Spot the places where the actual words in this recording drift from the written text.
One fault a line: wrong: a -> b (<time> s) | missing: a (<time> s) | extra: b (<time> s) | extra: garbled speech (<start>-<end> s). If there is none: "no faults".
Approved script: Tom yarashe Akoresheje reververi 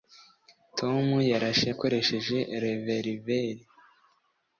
no faults